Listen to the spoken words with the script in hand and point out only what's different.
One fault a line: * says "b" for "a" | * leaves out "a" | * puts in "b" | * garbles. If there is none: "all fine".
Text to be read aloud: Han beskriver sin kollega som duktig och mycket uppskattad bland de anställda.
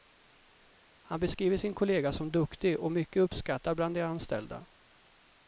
all fine